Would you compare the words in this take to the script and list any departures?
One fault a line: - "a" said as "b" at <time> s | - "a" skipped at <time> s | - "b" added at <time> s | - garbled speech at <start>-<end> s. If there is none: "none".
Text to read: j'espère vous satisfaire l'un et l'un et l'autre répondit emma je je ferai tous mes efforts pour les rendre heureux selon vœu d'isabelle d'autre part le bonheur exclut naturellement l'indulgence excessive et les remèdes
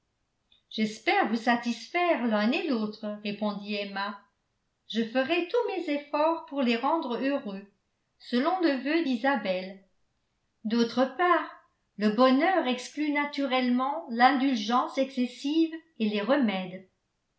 - "l'un et" skipped at 2.7 s
- "je" skipped at 5.0 s
- "le" added at 8.6 s